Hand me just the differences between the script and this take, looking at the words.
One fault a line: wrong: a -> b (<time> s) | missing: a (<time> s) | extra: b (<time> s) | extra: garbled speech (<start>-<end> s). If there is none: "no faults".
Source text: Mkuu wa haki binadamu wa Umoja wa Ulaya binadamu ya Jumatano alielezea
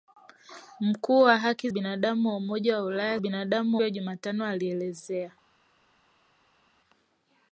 no faults